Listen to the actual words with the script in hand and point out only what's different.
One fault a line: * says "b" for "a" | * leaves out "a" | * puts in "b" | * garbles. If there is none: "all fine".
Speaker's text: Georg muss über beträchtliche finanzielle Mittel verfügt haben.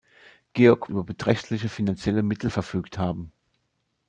* leaves out "muss"